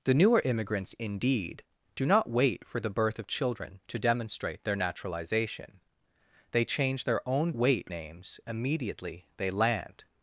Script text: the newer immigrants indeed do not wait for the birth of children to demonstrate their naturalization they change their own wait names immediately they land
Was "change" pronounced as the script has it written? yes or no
yes